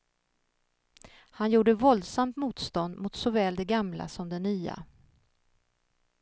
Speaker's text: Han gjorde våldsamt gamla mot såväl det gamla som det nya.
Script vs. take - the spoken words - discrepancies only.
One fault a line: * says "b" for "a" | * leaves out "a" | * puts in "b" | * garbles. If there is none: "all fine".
* says "motstånd" for "gamla"